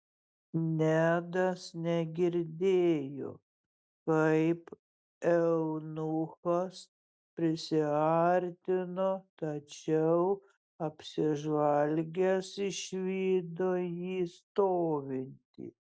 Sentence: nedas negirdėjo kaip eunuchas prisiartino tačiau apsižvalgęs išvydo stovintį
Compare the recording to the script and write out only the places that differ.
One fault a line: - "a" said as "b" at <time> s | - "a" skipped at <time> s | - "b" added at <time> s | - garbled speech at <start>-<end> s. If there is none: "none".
- "jį" added at 13.8 s